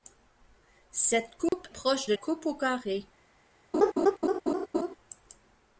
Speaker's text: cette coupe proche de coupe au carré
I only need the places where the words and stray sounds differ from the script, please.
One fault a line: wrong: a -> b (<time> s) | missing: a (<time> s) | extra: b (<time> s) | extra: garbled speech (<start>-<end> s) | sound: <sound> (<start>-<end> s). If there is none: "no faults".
sound: dropout (1.5-1.5 s)
sound: laugh (3.7-5.0 s)